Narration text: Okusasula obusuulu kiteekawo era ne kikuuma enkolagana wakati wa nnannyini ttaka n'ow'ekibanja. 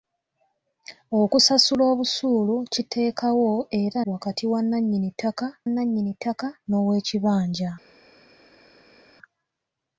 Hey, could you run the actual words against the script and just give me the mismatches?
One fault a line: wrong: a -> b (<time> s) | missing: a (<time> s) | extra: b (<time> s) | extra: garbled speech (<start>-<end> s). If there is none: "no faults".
wrong: ne kikuuma enkolagana wakati wa -> wakati wa nnannyini ttaka (4.1 s)